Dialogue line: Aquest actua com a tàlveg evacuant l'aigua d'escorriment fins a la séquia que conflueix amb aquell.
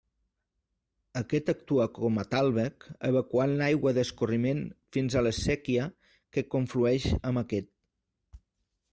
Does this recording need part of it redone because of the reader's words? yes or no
yes